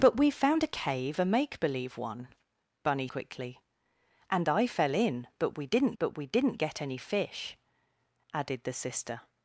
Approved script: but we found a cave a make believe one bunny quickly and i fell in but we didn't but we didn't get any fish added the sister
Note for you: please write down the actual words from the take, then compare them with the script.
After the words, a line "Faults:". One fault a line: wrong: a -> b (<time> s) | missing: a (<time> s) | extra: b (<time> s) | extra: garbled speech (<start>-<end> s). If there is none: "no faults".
but we found a cave a make believe one bunny quickly and i fell in but we didn't but we didn't get any fish added the sister
Faults:
no faults